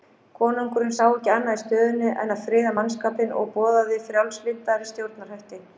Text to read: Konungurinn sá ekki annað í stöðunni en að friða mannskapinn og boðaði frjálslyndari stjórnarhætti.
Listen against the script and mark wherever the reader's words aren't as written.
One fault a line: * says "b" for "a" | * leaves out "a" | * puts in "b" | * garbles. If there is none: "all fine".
all fine